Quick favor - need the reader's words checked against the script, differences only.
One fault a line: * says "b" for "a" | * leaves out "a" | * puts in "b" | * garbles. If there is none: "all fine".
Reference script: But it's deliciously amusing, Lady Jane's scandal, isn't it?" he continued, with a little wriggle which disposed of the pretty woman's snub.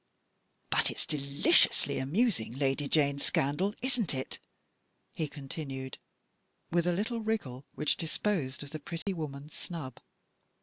all fine